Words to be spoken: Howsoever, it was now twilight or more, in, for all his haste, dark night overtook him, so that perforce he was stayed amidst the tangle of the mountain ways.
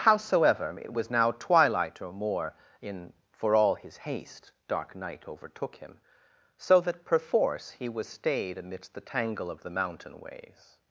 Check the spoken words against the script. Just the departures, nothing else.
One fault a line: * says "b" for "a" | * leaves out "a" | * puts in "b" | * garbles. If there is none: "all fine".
all fine